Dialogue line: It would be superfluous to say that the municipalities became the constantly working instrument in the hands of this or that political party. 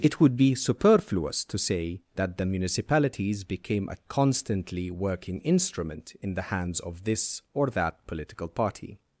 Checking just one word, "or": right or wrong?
right